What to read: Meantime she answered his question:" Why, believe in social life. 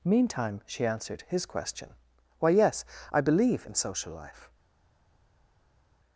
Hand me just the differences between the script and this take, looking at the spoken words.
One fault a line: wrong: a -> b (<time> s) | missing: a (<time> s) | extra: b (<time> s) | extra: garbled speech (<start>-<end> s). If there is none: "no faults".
extra: yes I (2.5 s)